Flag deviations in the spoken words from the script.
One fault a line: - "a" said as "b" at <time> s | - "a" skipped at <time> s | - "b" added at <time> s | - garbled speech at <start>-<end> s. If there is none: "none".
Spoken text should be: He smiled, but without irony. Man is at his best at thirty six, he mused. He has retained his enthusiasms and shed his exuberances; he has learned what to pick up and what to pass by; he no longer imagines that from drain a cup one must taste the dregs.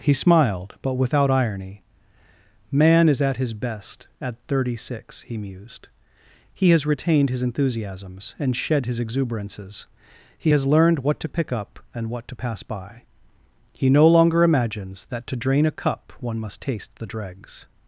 - "from" said as "to" at 15.3 s